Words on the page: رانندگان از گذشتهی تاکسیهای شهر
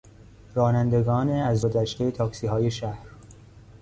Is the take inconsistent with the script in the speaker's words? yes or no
no